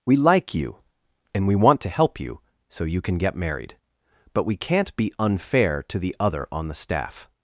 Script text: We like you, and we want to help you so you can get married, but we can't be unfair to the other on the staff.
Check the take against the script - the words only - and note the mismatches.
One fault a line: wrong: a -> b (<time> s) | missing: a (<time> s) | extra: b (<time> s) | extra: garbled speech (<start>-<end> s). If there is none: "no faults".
no faults